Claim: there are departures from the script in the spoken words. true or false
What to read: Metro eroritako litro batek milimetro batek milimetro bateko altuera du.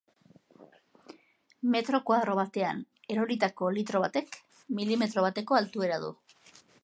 true